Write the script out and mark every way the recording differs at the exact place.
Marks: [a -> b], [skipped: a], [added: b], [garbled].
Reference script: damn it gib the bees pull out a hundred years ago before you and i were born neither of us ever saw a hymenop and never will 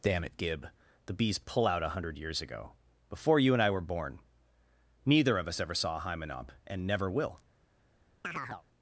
damn it gib the bees pull out a hundred years ago before you and i were born neither of us ever saw a hymenop and never will